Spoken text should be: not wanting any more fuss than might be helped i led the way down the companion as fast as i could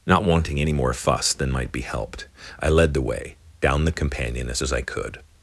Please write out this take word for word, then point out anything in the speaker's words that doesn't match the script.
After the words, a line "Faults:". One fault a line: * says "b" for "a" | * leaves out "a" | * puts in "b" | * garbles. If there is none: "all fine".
not wanting any more fuss than might be helped i led the way down the companion as as i could
Faults:
* leaves out "fast"